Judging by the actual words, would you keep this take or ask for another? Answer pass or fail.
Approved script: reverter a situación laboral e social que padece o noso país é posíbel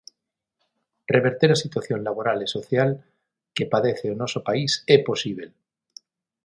pass